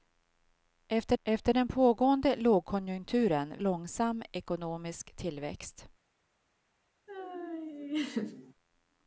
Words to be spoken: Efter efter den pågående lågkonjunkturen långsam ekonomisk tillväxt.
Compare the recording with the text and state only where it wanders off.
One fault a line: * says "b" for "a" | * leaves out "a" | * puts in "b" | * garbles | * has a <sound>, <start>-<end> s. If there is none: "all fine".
* has a laugh, 7.1-8.5 s